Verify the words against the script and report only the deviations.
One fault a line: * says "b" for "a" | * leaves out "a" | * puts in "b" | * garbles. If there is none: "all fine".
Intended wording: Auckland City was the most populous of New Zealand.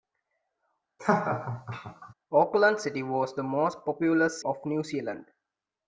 all fine